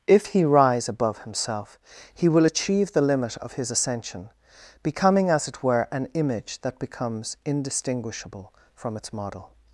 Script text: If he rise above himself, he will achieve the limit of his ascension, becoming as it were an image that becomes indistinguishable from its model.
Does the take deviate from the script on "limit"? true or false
false